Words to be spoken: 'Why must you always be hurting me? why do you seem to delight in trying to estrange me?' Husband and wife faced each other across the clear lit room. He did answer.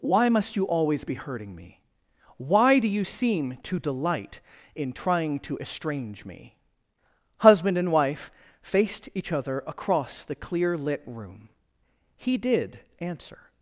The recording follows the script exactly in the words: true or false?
true